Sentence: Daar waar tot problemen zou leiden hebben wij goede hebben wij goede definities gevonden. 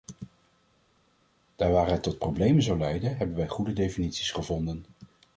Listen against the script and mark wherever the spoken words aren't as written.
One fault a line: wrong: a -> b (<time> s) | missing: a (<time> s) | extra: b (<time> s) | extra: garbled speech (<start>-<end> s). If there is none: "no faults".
extra: het (1.9 s)
missing: hebben wij goede (3.7 s)